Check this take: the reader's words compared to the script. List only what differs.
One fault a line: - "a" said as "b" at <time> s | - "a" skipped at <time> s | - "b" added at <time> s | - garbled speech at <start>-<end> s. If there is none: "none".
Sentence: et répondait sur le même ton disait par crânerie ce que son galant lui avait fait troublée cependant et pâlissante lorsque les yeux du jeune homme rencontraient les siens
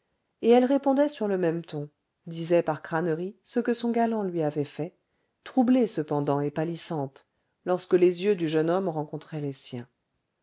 - "elle" added at 0.5 s